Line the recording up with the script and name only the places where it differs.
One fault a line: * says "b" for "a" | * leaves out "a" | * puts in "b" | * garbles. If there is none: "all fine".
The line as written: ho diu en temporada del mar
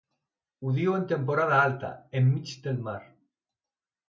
* puts in "alta enmig"